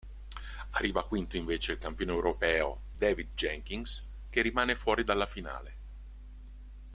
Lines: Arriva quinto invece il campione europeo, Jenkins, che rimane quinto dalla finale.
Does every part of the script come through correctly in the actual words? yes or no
no